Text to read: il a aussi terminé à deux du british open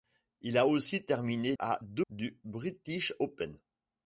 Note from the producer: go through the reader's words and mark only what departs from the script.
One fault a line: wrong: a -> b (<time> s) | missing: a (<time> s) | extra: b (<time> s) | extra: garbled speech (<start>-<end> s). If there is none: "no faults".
no faults